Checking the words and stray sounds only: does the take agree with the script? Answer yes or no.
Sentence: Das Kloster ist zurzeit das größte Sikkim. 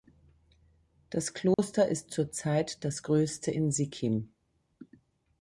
no